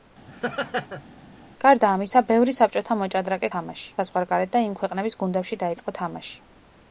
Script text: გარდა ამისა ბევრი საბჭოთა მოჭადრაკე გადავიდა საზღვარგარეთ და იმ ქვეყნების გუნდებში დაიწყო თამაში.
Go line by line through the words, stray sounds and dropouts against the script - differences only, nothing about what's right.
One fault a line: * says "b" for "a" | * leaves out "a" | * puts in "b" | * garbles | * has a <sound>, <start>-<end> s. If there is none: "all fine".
* has a laugh, 0.3-1.0 s
* says "თამაში" for "გადავიდა"